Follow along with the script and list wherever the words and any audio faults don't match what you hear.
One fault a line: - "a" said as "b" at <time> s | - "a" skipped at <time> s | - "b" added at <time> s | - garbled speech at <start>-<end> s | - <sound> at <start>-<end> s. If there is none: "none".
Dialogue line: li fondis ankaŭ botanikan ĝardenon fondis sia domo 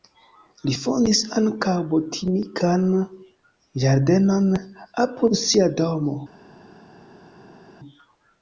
- "fondis" said as "apud" at 5.0 s